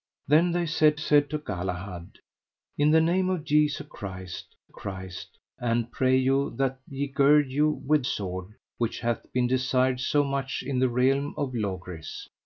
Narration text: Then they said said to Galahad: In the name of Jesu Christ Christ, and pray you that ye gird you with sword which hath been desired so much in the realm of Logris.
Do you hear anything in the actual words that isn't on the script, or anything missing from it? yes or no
no